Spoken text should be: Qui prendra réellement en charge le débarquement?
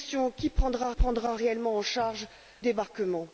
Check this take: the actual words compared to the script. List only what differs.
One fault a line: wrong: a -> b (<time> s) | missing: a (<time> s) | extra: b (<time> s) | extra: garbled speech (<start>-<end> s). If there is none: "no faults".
extra: prendra (0.9 s)
missing: le (2.3 s)